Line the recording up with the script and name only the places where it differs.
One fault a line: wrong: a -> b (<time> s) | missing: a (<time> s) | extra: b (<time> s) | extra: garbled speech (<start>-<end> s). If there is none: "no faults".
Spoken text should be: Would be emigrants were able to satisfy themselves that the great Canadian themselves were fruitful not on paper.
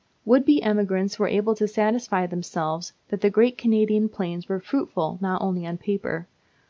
wrong: themselves -> plains (4.1 s)
extra: only (5.4 s)